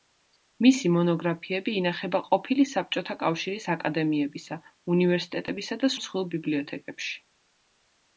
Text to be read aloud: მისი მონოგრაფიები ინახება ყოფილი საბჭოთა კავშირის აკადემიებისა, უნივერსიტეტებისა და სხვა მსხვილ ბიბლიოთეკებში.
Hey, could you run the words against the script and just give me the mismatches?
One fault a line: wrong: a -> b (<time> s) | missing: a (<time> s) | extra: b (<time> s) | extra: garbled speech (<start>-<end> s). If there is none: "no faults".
missing: სხვა (5.9 s)